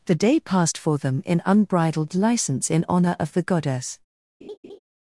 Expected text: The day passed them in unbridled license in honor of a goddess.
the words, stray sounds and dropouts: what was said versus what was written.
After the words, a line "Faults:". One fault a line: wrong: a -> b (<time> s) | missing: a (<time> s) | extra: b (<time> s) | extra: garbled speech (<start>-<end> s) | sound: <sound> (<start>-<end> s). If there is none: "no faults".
The day passed for them in unbridled license in honor of the goddess.
Faults:
extra: for (0.8 s)
wrong: a -> the (3.3 s)
sound: laugh (4.4-4.8 s)